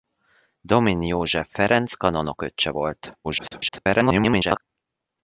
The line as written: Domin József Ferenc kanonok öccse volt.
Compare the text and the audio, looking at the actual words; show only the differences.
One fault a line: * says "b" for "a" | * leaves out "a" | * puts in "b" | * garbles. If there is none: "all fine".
* garbles